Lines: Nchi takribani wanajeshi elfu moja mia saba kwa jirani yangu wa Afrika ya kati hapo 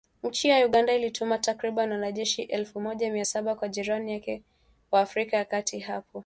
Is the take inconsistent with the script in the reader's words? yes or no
yes